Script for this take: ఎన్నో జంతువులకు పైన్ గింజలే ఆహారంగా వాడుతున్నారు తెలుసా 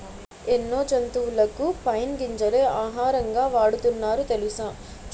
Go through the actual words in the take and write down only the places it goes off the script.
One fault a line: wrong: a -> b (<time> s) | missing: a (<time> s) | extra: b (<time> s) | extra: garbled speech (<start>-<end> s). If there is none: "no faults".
no faults